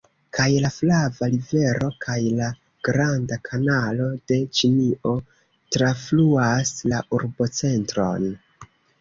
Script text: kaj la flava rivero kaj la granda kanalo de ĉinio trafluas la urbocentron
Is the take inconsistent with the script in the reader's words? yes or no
no